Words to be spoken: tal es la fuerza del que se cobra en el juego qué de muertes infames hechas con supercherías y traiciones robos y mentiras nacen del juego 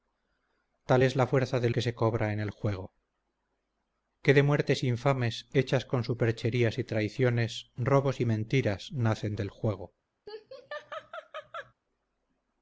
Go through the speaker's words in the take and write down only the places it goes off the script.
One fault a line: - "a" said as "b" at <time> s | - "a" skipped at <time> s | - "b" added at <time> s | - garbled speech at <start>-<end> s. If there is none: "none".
none